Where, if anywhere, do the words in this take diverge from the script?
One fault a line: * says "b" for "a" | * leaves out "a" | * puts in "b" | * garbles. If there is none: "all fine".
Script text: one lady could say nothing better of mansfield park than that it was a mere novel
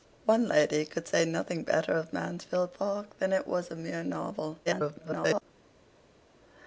* garbles